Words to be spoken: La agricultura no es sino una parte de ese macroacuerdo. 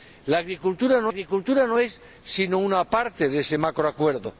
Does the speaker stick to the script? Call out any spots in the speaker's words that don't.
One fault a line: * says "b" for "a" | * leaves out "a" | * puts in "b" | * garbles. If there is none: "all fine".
* puts in "agricultura no"